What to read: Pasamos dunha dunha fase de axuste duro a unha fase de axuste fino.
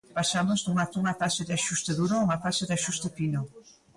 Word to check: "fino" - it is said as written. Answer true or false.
true